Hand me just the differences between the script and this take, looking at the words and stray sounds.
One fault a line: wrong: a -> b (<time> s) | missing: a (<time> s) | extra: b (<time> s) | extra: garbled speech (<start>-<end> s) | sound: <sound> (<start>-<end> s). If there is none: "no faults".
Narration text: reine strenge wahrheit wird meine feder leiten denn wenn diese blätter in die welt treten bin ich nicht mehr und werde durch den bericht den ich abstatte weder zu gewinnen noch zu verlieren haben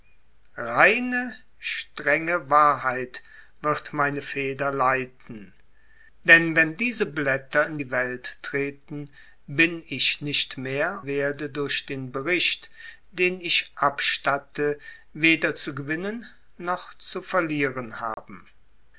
missing: und (11.0 s)
sound: dropout (18.1-18.2 s)